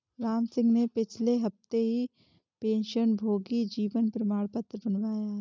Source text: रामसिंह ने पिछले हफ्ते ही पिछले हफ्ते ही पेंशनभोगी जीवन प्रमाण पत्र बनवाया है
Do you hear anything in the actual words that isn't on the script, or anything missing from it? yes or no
yes